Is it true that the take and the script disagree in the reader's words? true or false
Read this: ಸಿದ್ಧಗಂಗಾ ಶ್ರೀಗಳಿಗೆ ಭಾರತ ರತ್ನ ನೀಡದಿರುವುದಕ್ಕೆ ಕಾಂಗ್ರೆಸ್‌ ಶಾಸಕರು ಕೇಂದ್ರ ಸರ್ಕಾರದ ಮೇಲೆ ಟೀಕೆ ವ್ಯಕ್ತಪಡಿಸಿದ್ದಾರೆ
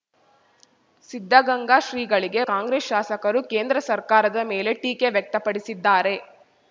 true